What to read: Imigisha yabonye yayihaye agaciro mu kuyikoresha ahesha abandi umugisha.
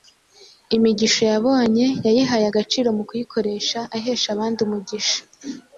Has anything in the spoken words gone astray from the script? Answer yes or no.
no